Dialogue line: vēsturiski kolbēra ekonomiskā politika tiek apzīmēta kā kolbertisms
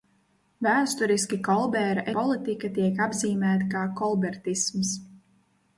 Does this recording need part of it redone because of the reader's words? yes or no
yes